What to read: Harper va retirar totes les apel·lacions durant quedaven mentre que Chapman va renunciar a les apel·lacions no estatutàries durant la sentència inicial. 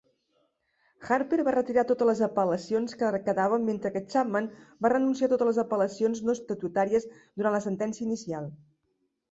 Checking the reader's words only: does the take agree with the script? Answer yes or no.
no